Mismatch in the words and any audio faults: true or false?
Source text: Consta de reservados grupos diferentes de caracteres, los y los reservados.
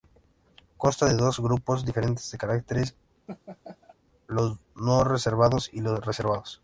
true